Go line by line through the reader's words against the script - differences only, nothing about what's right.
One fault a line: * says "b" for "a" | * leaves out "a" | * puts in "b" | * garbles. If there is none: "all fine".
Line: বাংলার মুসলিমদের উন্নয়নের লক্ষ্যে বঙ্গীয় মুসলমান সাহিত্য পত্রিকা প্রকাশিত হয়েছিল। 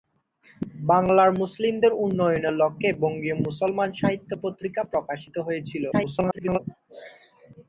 * garbles